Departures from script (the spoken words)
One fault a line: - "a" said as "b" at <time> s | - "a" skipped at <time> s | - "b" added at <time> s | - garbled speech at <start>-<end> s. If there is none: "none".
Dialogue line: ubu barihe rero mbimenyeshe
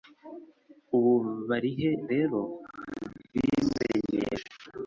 none